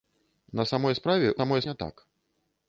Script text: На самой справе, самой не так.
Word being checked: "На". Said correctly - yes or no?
yes